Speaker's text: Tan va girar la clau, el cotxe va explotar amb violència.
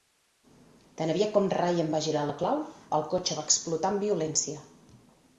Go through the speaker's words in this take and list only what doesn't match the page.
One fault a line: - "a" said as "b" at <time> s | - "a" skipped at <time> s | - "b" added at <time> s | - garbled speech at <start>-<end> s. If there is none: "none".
- "aviat com Ryan" added at 1.1 s